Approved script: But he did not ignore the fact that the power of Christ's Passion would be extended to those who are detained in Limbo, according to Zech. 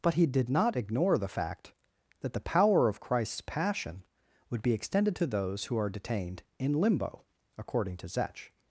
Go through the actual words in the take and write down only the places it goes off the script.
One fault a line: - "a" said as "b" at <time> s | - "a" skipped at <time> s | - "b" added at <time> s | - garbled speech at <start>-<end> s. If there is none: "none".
none